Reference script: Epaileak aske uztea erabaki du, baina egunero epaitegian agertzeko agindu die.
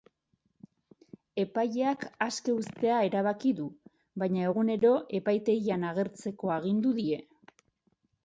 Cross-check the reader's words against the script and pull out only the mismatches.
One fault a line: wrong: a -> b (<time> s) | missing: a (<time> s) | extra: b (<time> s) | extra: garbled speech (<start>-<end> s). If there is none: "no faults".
no faults